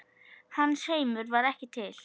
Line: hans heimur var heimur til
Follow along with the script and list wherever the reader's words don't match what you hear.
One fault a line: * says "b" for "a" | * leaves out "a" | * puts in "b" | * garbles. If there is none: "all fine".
* says "ekki" for "heimur"